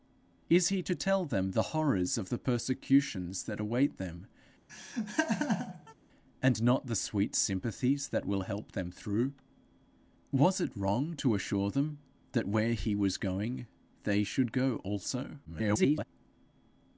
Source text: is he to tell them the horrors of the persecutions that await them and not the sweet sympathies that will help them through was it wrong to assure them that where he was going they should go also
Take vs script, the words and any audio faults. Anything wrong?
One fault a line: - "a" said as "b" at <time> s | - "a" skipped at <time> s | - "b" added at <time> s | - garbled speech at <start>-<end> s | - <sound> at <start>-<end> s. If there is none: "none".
- laugh at 4.7-5.9 s
- garbled speech at 15.4-16.0 s